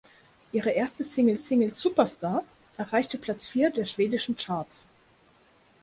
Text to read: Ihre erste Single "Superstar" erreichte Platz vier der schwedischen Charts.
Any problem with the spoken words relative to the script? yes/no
yes